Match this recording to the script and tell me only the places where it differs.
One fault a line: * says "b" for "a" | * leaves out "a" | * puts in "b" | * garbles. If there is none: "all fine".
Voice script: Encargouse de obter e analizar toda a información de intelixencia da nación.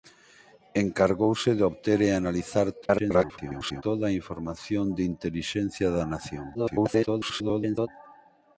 * garbles
* garbles